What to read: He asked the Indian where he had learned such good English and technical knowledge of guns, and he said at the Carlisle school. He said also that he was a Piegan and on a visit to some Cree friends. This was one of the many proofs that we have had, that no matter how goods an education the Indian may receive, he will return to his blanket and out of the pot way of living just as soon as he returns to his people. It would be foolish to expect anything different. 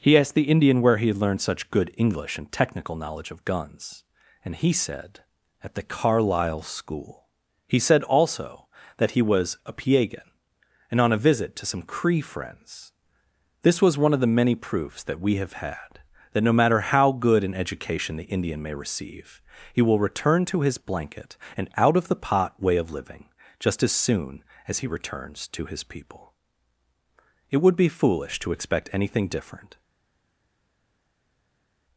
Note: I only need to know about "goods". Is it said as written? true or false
false